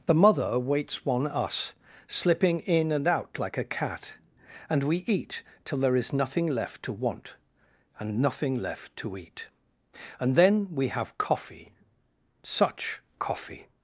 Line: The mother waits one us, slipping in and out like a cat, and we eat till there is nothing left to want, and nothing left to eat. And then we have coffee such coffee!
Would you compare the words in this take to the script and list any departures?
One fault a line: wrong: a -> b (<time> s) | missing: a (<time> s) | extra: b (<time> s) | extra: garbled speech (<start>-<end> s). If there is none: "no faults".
no faults